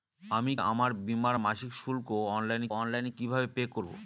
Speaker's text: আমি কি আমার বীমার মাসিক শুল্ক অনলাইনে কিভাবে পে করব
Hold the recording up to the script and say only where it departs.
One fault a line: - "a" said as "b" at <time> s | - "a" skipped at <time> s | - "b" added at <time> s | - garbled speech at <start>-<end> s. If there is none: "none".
- "কি" skipped at 0.5 s
- "অনলাইনে" added at 2.7 s